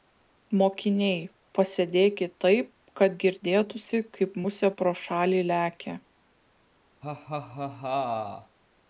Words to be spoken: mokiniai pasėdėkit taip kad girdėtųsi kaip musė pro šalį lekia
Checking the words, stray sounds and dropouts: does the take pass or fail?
fail